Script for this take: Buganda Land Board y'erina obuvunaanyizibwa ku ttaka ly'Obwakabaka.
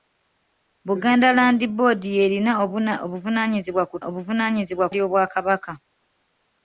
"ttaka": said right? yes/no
no